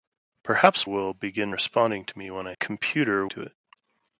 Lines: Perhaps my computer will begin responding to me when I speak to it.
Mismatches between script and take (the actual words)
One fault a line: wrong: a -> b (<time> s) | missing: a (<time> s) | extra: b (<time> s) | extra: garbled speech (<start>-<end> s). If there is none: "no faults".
missing: my computer (0.9 s)
wrong: speak -> computer (2.6 s)